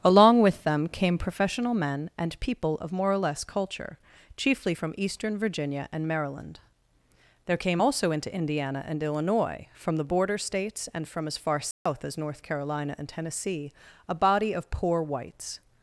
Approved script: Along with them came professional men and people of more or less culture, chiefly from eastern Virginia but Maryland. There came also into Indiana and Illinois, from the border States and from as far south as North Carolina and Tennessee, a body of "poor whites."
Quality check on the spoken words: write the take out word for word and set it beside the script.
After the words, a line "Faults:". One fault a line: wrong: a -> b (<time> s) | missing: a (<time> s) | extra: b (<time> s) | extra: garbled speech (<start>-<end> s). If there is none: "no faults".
Along with them came professional men and people of more or less culture, chiefly from eastern Virginia and Maryland. There came also into Indiana and Illinois, from the border States and from as far south as North Carolina and Tennessee, a body of "poor whites."
Faults:
wrong: but -> and (5.9 s)